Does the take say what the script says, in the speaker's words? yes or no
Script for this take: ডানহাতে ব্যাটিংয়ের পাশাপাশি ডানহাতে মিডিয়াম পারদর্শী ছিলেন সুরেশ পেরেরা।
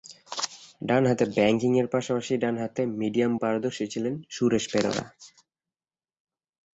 yes